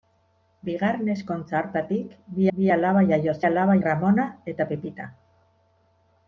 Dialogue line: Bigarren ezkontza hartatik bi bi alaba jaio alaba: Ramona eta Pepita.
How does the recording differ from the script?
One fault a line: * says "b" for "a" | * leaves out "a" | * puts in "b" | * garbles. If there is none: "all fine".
all fine